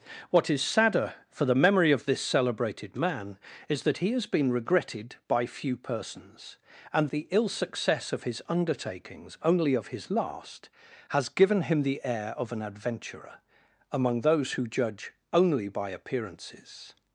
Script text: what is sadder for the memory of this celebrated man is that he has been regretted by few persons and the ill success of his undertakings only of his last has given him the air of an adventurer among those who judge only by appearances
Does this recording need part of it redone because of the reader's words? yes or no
no